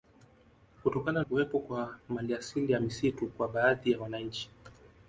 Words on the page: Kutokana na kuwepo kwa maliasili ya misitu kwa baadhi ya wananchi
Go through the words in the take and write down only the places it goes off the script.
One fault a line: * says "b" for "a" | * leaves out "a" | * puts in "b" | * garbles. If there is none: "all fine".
* leaves out "na"